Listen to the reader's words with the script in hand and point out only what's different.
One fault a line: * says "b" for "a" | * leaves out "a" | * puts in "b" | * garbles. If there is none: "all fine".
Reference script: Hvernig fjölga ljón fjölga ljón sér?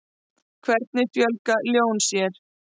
* leaves out "fjölga ljón"